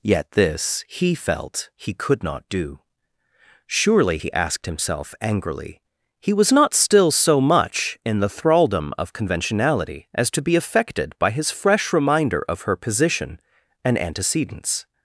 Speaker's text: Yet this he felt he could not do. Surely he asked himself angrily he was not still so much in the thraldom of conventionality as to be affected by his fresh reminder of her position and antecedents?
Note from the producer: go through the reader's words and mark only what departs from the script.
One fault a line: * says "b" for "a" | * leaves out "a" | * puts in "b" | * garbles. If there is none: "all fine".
all fine